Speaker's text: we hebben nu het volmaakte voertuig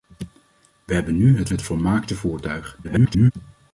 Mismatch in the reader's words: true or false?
true